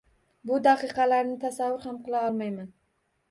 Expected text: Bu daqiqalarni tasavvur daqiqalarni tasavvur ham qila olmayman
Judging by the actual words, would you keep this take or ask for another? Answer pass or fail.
fail